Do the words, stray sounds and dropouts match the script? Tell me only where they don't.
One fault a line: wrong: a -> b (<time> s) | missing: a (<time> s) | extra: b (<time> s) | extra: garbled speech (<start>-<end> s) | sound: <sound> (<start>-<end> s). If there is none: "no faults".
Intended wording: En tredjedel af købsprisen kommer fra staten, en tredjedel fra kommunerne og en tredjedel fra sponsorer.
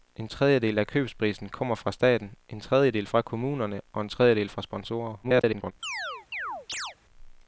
extra: garbled speech (5.2-5.7 s)
sound: chirp (5.8-7.0 s)